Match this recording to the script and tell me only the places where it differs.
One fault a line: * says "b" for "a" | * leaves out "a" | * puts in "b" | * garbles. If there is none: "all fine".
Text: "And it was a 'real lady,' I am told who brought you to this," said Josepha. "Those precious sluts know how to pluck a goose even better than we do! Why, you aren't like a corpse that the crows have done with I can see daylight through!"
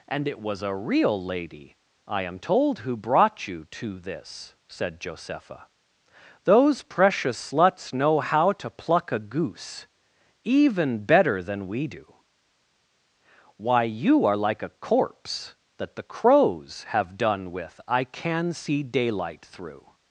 * says "are" for "aren't"